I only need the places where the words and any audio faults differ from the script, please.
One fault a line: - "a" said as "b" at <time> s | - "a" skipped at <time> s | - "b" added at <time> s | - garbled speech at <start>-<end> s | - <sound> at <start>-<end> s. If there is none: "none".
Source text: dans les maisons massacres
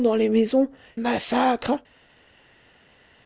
none